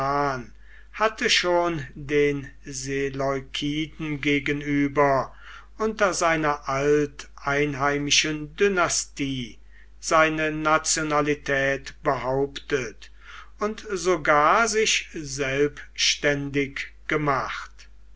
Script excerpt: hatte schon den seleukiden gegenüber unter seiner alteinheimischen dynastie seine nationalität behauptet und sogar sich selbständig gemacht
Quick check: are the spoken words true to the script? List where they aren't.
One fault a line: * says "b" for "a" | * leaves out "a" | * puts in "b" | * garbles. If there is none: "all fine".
all fine